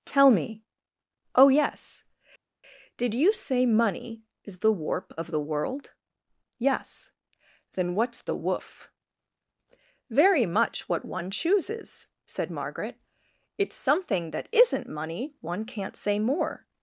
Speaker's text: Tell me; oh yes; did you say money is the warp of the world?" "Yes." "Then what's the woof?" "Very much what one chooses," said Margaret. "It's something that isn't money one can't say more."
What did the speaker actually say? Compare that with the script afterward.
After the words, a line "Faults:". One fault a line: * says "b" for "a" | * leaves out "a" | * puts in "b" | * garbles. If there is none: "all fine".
Tell me; oh yes; did you say money is the warp of the world?" "Yes." "Then what's the woof?" "Very much what one chooses," said Margaret. "It's something that isn't money one can't say more."
Faults:
all fine